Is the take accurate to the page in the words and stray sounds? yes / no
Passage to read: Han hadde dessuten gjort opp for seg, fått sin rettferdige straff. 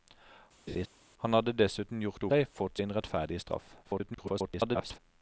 no